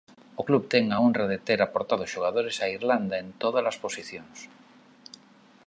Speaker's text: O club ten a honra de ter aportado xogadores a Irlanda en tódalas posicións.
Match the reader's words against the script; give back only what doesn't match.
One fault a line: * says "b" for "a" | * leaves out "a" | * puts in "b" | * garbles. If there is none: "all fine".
all fine